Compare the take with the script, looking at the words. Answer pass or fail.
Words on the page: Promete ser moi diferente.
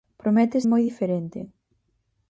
fail